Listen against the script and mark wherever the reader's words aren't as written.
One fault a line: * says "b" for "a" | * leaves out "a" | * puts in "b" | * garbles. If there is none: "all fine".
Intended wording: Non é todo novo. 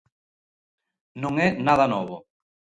* says "nada" for "todo"